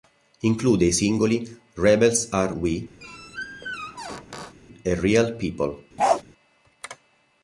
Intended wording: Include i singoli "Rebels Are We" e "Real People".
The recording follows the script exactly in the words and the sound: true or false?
false